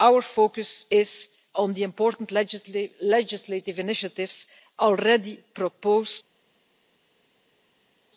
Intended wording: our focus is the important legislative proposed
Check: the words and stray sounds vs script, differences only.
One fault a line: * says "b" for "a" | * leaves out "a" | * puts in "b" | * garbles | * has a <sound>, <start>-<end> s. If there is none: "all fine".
* puts in "on"
* puts in "initiatives already"